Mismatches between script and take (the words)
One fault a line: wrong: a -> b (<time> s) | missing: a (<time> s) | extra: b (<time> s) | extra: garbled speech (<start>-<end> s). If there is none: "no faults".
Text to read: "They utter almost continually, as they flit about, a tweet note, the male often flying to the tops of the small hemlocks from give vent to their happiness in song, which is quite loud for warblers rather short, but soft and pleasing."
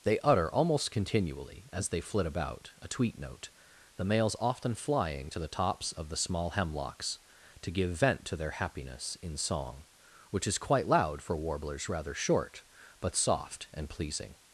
wrong: male -> males (4.0 s)
wrong: from -> to (7.6 s)